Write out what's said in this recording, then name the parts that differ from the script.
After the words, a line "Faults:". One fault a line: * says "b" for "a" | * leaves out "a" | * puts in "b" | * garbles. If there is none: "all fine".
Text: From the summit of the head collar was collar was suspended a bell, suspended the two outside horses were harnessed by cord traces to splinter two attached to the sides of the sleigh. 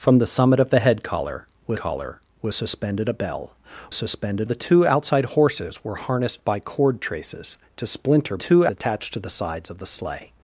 From the summit of the head collar was collar was suspended a bell, suspended the two outside horses were harnessed by cord traces to splinter two attached to the sides of the sleigh.
Faults:
all fine